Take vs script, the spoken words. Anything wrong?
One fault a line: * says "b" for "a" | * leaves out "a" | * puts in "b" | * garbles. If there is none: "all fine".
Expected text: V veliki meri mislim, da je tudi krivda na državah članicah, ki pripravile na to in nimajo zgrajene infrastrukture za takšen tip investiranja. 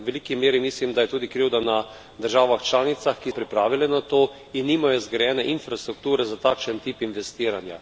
all fine